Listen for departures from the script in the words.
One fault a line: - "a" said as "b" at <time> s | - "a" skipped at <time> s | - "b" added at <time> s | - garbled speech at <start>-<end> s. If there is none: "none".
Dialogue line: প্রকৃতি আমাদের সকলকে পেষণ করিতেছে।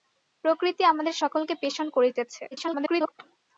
- garbled speech at 2.5-3.1 s